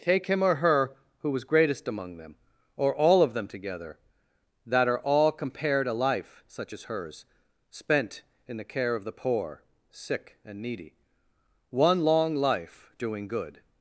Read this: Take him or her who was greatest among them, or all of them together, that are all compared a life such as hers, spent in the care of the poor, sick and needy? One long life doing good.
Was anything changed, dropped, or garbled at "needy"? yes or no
no